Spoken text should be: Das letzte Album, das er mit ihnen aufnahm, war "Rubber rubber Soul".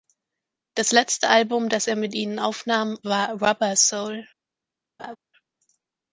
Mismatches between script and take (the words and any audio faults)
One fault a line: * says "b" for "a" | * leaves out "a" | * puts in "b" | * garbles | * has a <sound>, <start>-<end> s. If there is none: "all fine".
* leaves out "rubber"
* has a laugh, 5.0-5.2 s